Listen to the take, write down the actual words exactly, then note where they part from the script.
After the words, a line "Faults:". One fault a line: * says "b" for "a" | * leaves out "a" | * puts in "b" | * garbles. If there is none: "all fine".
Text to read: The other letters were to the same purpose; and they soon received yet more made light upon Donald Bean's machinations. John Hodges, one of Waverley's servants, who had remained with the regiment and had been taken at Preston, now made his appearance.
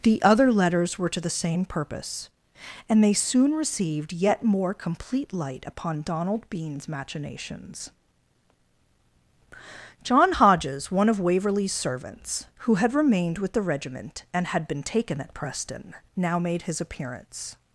The other letters were to the same purpose; and they soon received yet more complete light upon Donald Bean's machinations. John Hodges, one of Waverley's servants, who had remained with the regiment and had been taken at Preston, now made his appearance.
Faults:
* says "complete" for "made"